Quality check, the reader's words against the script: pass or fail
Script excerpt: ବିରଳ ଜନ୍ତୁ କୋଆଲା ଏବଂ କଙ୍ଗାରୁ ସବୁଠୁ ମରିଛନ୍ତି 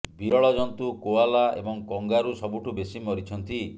fail